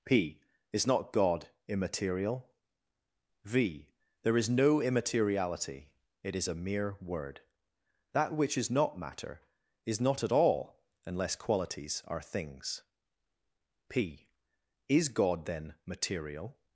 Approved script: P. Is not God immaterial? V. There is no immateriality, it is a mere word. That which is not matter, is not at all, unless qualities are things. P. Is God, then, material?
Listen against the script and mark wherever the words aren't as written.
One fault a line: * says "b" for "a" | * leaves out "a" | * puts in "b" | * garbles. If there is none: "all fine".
all fine